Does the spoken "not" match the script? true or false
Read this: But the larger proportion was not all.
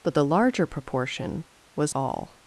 false